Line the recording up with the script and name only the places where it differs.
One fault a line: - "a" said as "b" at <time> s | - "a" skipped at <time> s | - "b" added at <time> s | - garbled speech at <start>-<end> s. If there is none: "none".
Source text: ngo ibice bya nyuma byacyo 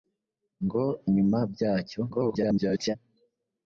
- "ibice bya" skipped at 0.8 s
- garbled speech at 2.1-3.0 s